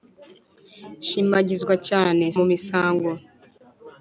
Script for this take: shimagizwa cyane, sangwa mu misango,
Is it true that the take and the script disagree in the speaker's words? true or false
true